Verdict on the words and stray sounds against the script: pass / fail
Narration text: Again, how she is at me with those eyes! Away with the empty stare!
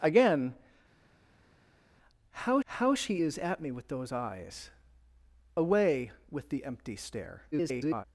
fail